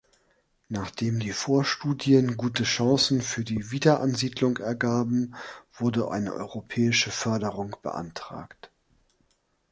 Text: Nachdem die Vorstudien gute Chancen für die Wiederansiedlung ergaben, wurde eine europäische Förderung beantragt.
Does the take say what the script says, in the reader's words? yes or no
yes